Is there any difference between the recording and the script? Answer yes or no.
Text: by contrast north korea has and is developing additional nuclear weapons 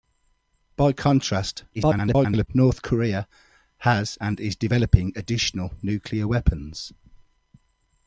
yes